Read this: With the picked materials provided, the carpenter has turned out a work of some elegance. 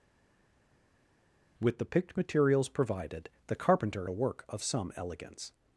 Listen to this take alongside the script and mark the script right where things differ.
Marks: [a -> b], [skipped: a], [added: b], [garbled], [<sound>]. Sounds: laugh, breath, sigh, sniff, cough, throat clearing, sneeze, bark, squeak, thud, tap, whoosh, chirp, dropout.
With the picked materials provided, the carpenter [skipped: has turned out] a work of some elegance.